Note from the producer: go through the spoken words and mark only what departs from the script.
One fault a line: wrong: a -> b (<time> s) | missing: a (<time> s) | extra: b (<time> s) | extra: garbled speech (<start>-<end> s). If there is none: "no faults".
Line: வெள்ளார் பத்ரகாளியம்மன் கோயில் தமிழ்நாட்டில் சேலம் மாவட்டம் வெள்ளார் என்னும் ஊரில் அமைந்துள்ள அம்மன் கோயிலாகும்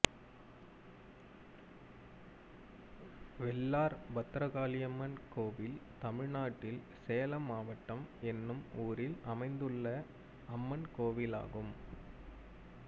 missing: வெள்ளார் (8.0 s)